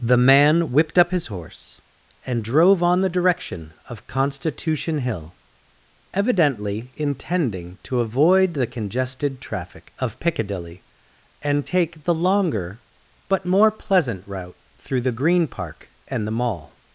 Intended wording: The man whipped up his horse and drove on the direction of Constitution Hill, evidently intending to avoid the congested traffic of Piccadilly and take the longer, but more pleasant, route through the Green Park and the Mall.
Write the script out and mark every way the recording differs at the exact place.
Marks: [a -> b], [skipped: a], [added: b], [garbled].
The man whipped up his horse and drove on the direction of Constitution Hill, evidently intending to avoid the congested traffic of Piccadilly and take the longer, but more pleasant, route through the Green Park and the Mall.